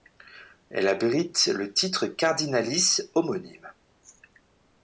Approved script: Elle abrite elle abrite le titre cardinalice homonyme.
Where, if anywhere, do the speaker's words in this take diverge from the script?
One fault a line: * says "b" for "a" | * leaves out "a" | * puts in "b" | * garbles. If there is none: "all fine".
* leaves out "elle abrite"